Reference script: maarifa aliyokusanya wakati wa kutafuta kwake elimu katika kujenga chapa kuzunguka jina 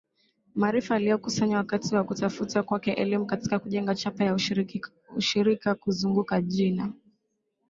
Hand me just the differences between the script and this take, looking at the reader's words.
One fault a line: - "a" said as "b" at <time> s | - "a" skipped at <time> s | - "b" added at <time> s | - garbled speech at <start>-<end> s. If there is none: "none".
- "ya ushirika" added at 4.2 s